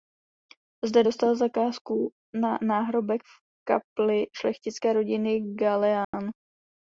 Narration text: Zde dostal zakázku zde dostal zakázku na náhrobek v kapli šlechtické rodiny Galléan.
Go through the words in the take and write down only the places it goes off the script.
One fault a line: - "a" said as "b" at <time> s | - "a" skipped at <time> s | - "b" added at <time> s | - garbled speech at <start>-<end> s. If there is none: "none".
- "zde dostal zakázku" skipped at 2.1 s